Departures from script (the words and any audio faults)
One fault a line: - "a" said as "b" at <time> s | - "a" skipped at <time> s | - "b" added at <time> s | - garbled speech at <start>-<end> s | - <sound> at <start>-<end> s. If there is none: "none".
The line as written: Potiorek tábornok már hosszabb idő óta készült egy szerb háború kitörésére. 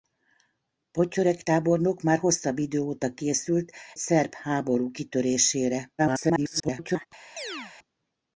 - "egy" skipped at 3.7 s
- garbled speech at 6.0-7.1 s
- chirp at 7.4-7.7 s